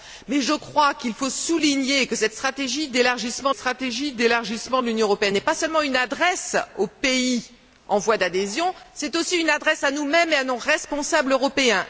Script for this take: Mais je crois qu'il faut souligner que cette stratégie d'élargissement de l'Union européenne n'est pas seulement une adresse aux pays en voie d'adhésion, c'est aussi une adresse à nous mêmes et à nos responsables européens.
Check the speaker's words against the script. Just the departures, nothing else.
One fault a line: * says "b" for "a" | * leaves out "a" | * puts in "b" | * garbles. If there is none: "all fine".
* puts in "stratégie d'élargissement"